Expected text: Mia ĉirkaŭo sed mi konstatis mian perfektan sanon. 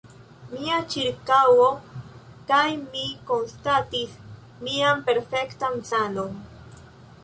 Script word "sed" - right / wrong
wrong